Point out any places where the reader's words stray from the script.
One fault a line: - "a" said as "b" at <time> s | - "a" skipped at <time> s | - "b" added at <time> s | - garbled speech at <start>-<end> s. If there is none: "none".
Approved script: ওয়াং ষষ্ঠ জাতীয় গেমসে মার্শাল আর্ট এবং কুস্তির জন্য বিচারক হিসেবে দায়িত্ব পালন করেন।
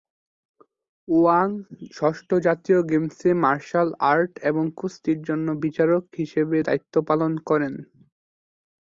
none